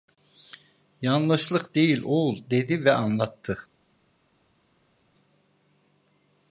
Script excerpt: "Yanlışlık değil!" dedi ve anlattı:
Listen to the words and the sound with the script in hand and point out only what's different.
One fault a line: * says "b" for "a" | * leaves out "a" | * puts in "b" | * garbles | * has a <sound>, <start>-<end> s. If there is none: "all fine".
* puts in "oğul"